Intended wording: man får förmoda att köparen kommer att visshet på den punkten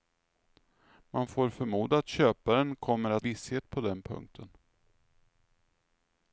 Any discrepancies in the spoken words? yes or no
no